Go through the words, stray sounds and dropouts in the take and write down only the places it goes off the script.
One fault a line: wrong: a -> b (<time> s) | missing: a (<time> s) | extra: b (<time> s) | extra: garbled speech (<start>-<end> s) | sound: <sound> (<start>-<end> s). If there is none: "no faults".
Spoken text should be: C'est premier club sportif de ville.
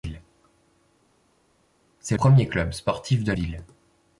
no faults